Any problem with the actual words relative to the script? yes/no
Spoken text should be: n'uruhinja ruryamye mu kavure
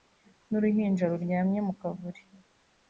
no